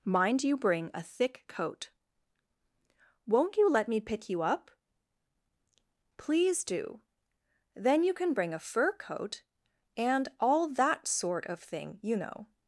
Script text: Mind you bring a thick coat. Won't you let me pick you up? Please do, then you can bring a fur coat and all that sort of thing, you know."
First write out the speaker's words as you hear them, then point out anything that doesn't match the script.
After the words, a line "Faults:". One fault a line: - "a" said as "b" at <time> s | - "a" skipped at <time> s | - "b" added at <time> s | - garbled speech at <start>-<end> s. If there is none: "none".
Mind you bring a thick coat. Won't you let me pick you up? Please do, then you can bring a fur coat and all that sort of thing, you know."
Faults:
none